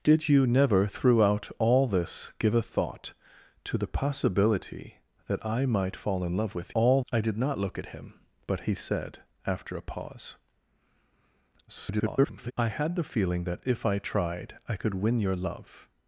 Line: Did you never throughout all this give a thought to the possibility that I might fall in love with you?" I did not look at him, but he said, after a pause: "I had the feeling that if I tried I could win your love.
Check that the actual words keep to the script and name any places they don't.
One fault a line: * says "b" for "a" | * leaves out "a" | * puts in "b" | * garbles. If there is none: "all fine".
* says "all" for "you"
* garbles